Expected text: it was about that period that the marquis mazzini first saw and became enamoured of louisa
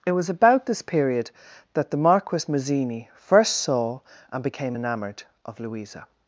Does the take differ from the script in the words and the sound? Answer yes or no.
yes